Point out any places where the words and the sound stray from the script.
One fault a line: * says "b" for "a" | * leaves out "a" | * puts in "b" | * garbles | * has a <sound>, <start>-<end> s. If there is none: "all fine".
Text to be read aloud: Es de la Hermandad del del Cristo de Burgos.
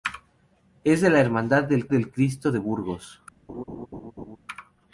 * has a laugh, 3.5-4.4 s